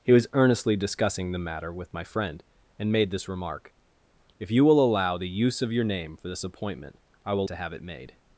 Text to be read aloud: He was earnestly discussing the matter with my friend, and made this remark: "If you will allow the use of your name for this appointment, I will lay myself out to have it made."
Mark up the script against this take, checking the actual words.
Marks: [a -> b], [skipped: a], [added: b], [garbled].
He was earnestly discussing the matter with my friend, and made this remark: "If you will allow the use of your name for this appointment, I will [skipped: lay myself out] to have it made."